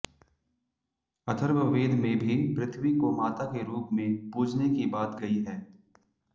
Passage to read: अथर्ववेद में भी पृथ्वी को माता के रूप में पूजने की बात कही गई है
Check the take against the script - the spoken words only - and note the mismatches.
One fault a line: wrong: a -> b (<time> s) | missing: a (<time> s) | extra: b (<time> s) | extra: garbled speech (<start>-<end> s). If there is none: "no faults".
missing: कही (5.2 s)